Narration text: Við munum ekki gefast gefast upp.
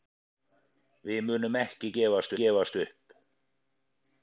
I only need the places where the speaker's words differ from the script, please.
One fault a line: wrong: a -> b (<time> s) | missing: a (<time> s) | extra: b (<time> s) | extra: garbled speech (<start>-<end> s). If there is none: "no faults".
no faults